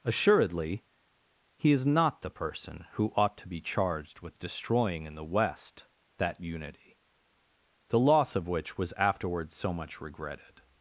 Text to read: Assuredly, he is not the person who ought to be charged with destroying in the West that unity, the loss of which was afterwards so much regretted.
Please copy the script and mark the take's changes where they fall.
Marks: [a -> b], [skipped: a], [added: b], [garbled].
Assuredly, he is not the person who ought to be charged with destroying in the West that unity, the loss of which was afterwards so much regretted.